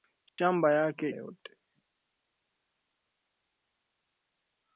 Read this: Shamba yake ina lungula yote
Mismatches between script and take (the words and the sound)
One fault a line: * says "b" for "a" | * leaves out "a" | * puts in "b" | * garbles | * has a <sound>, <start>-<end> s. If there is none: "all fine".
* has a dropout, 0.3-0.4 s
* leaves out "ina lungula"